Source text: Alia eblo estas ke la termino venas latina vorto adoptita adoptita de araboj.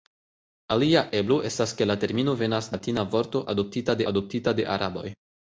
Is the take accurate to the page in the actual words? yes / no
yes